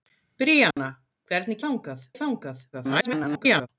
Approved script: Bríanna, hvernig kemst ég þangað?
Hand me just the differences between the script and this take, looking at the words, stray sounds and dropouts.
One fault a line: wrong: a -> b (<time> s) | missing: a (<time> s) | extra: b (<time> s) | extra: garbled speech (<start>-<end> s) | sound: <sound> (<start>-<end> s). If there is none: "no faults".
sound: dropout (0.7-0.8 s)
wrong: kemst -> þangað (1.7 s)
extra: garbled speech (2.7-3.7 s)